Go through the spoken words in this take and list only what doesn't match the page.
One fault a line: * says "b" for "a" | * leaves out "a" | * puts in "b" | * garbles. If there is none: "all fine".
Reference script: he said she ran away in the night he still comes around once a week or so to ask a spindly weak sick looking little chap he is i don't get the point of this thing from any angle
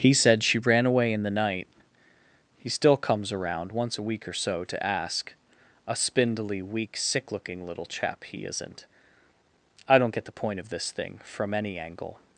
* says "isn't" for "is"